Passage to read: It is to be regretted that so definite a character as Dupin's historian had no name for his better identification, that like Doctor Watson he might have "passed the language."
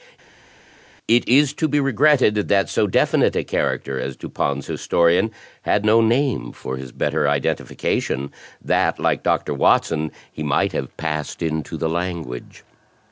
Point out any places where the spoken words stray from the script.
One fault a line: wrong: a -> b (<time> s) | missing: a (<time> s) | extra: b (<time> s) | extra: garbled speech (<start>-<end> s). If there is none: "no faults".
extra: into (11.4 s)